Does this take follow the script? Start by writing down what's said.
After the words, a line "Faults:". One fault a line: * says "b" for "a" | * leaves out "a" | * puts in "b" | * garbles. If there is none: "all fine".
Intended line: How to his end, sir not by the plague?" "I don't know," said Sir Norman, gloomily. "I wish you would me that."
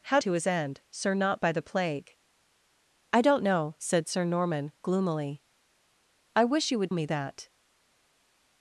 How to his end, sir not by the plague?" "I don't know," said Sir Norman, gloomily. "I wish you would me that."
Faults:
all fine